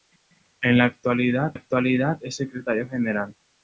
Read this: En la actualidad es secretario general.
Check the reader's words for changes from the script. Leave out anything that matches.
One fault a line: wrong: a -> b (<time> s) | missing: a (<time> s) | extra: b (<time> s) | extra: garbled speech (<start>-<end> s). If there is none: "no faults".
extra: actualidad (1.5 s)